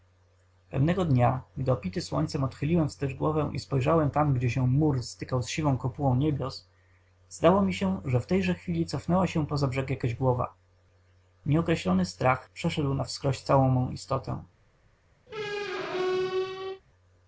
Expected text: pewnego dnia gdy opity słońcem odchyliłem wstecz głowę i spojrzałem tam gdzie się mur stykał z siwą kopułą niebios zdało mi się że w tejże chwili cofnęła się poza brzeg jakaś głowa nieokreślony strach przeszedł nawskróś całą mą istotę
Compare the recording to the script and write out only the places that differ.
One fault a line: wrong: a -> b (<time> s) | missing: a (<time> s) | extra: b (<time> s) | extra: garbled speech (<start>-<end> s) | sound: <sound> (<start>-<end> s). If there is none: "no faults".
sound: squeak (15.3-16.8 s)